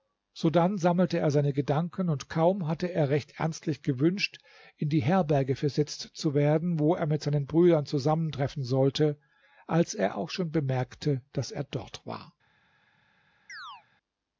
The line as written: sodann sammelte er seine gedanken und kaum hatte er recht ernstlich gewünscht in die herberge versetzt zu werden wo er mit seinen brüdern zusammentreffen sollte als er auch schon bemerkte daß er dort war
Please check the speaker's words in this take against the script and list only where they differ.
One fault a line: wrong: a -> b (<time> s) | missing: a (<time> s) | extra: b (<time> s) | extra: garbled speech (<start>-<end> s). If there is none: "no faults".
no faults